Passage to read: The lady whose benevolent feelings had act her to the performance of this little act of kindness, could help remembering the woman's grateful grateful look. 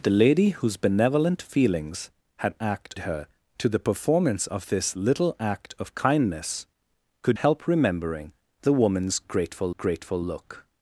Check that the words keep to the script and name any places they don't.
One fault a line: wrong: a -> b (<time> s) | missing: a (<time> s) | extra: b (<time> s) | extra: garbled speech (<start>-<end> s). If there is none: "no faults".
no faults